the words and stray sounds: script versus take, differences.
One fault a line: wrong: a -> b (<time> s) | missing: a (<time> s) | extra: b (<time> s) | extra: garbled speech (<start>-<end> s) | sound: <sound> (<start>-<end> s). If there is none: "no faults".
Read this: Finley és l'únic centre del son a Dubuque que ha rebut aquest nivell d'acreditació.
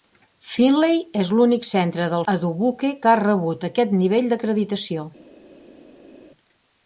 missing: son (2.2 s)